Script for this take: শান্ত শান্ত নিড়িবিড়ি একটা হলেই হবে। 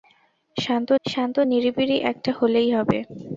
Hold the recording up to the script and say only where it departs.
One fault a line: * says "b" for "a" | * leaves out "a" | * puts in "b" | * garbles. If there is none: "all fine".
all fine